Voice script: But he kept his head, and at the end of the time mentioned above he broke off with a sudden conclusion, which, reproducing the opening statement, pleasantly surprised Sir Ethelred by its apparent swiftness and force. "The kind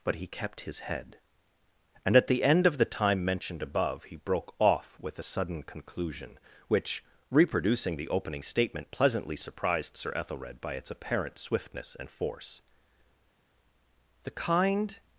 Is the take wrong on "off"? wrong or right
right